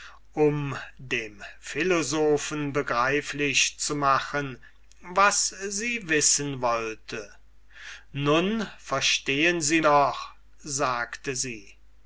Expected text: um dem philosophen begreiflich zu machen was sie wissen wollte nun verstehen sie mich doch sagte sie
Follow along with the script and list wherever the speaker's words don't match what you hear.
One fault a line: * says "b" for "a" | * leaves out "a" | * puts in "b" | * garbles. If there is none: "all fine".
* leaves out "mich"